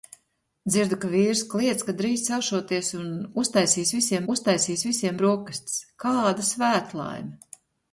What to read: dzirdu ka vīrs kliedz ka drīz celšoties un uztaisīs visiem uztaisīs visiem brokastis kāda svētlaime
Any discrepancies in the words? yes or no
no